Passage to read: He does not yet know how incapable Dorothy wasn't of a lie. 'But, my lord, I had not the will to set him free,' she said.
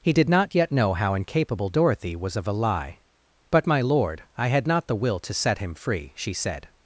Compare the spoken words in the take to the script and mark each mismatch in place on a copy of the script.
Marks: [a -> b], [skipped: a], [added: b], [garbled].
He [does -> did] not yet know how incapable Dorothy [wasn't -> was] of a lie. 'But, my lord, I had not the will to set him free,' she said.